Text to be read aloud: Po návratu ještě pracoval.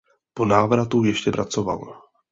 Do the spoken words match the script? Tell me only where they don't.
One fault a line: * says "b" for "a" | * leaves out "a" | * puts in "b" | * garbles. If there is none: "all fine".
all fine